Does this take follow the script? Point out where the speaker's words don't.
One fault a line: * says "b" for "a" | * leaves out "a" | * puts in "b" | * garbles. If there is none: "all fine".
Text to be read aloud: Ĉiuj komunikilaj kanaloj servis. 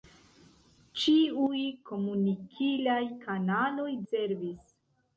all fine